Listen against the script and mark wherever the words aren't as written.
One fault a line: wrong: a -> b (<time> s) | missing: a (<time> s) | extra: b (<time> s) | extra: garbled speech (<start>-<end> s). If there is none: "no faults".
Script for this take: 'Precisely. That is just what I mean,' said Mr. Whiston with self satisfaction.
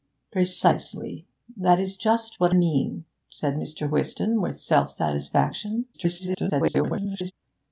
missing: I (2.5 s)
extra: garbled speech (5.9-7.3 s)